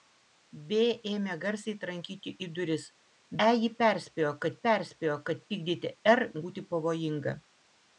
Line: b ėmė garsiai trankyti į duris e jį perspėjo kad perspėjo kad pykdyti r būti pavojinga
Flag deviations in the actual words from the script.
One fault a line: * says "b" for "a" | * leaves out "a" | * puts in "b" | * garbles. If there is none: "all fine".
all fine